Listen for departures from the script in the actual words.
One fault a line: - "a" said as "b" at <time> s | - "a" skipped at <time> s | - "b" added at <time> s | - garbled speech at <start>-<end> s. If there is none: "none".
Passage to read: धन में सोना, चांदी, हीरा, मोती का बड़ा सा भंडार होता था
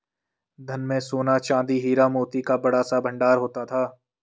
none